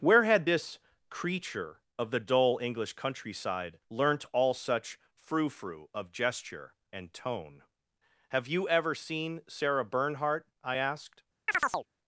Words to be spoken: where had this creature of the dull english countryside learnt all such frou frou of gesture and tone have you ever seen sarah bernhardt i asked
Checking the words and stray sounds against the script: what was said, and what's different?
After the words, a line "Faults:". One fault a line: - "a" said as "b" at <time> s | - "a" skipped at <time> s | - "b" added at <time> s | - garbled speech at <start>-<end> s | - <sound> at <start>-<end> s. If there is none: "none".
where had this creature of the dull english countryside learnt all such frou frou of gesture and tone have you ever seen sarah bernhardt i asked
Faults:
- chirp at 11.5-11.9 s